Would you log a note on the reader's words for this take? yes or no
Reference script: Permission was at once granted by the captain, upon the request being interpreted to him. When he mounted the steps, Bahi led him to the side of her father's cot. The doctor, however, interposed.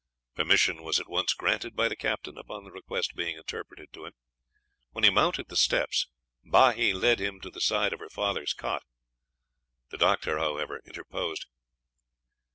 no